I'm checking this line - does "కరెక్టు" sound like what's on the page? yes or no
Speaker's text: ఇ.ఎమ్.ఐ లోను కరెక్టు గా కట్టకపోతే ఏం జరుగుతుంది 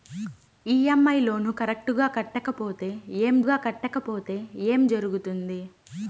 yes